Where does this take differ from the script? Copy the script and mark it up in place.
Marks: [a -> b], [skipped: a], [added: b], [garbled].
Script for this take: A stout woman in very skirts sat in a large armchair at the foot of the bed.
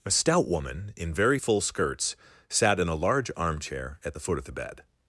A stout woman in very [added: full] skirts sat in a large armchair at the foot of the bed.